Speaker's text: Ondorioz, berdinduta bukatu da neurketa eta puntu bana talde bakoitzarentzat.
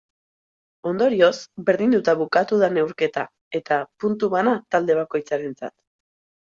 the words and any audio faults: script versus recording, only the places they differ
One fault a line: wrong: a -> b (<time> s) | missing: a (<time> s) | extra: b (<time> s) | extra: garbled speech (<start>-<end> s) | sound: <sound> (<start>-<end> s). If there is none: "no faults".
no faults